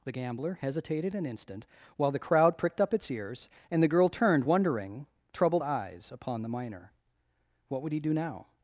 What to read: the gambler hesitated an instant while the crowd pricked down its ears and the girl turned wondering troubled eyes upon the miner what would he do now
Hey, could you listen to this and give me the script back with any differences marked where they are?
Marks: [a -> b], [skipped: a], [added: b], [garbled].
the gambler hesitated an instant while the crowd pricked [down -> up] its ears and the girl turned wondering troubled eyes upon the miner what would he do now